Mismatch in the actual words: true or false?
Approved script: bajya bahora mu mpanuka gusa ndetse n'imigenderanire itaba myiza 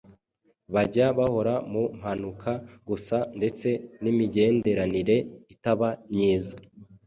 false